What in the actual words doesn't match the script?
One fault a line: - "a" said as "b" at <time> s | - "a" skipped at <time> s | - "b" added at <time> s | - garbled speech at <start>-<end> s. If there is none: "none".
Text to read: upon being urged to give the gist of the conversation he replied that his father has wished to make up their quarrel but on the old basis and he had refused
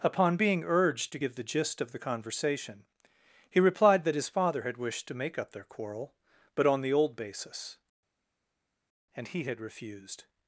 - "has" said as "had" at 4.6 s